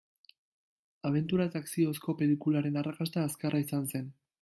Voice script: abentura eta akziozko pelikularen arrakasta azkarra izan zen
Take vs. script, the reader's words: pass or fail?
pass